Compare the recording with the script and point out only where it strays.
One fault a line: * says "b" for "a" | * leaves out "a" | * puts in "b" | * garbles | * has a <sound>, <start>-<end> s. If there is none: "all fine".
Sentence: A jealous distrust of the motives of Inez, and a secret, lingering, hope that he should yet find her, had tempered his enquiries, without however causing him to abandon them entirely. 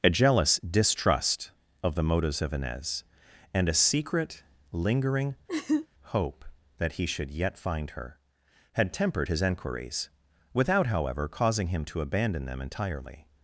* has a laugh, 5.5-5.9 s